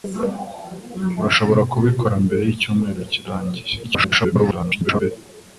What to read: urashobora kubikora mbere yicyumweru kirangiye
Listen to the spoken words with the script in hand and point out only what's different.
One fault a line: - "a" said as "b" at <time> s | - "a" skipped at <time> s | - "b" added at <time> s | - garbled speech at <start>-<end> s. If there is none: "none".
- garbled speech at 3.8-5.1 s